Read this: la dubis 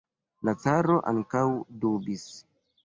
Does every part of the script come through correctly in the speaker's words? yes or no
no